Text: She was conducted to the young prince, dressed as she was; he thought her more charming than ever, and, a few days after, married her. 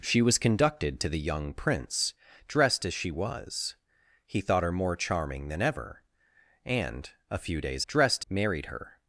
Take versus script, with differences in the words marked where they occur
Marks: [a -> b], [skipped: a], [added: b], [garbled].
She was conducted to the young prince, dressed as she was; he thought her more charming than ever, and, a few days [after, -> dressed] married her.